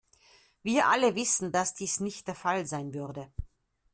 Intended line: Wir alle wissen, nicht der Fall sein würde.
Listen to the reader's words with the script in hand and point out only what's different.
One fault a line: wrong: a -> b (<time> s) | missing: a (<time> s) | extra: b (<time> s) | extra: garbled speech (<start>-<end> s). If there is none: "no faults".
extra: dass dies (1.5 s)